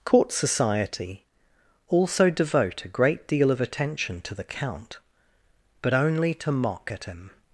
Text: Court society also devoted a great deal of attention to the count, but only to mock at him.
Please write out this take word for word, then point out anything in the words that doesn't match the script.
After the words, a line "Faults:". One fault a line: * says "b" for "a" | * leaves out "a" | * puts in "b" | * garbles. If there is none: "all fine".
Court society also devote a great deal of attention to the count, but only to mock at him.
Faults:
* says "devote" for "devoted"